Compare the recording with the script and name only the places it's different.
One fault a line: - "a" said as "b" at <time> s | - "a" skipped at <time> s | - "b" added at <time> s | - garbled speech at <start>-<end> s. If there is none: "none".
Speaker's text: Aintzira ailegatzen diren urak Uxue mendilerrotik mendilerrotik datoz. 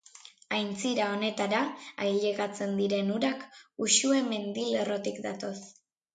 - "honetara" added at 1.2 s
- "mendilerrotik" skipped at 5.2 s